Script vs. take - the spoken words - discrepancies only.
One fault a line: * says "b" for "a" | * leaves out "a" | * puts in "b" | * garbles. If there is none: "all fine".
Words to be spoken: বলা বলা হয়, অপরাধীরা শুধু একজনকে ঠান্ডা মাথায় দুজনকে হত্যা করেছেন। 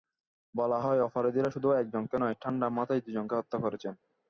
* leaves out "বলা"
* puts in "নয়"